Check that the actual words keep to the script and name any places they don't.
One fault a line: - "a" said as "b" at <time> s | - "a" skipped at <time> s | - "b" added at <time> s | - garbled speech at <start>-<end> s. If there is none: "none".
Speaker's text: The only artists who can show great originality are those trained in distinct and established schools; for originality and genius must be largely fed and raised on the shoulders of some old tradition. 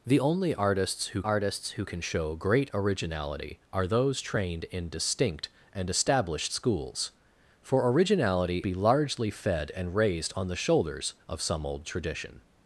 - "artists who" added at 1.2 s
- "and genius must" skipped at 8.6 s